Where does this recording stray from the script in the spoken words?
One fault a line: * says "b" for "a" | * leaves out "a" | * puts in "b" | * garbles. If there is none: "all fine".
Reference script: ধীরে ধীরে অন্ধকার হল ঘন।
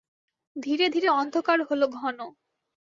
all fine